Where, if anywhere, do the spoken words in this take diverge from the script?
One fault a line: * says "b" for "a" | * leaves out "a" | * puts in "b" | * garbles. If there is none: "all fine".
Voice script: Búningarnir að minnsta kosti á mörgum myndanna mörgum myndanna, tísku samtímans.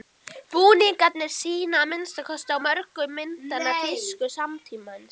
* puts in "sýna"
* leaves out "mörgum myndanna"